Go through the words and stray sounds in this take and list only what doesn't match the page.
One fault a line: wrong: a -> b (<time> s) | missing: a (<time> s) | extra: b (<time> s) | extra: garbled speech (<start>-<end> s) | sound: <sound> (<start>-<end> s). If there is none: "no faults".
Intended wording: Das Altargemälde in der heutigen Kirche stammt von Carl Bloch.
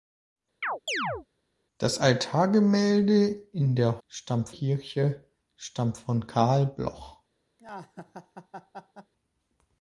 sound: chirp (0.6-1.3 s)
wrong: heutigen -> stammt (4.1 s)
sound: laugh (7.6-9.1 s)